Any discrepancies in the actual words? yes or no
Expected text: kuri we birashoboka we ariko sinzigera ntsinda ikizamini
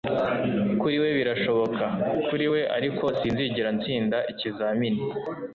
yes